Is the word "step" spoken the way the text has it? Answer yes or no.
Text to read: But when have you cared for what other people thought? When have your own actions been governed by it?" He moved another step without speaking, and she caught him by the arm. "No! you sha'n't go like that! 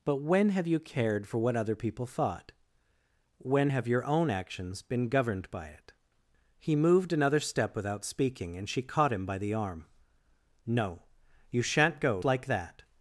yes